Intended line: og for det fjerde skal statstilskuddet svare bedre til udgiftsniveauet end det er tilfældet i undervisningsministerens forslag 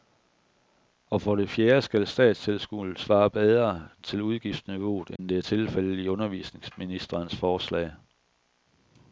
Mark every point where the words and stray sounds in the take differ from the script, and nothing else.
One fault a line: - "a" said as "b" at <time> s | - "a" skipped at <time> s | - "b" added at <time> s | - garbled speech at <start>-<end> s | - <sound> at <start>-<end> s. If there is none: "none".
- dropout at 5.2-5.2 s